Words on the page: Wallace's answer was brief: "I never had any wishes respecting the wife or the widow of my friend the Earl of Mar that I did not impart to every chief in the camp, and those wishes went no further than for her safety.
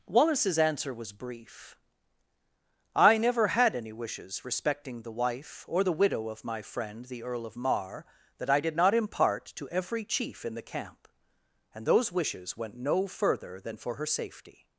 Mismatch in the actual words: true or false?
false